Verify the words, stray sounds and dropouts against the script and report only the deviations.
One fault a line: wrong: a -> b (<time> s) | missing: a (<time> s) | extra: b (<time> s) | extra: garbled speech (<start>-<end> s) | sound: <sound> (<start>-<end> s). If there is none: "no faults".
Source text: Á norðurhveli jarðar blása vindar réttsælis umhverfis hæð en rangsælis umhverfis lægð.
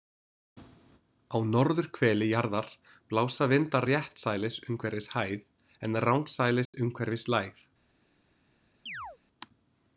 sound: dropout (6.7-6.7 s)
sound: chirp (8.9-9.2 s)